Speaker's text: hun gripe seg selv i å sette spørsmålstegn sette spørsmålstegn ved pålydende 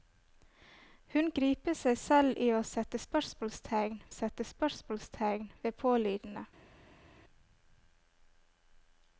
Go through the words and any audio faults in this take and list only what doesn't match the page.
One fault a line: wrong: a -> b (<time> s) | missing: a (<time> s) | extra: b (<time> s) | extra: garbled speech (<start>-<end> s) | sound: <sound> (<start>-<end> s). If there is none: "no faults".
no faults